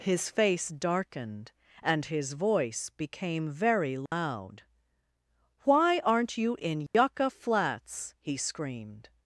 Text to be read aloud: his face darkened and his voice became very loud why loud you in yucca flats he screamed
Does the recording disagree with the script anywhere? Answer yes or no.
yes